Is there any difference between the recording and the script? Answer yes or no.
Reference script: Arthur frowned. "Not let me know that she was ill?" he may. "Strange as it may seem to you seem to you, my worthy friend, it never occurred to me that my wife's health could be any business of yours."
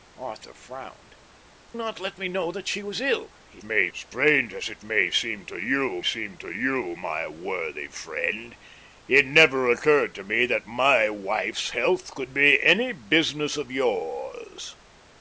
no